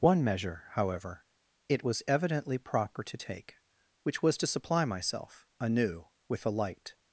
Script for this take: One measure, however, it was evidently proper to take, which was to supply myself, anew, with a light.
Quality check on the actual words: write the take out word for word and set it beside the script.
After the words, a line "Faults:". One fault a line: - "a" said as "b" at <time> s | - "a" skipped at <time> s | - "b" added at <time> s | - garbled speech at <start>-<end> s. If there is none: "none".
One measure, however, it was evidently proper to take, which was to supply myself, anew, with a light.
Faults:
none